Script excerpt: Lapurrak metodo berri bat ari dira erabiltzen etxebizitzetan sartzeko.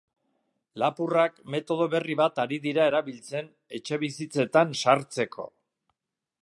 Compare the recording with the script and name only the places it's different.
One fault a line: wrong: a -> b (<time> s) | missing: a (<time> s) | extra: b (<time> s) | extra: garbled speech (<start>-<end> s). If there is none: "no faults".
no faults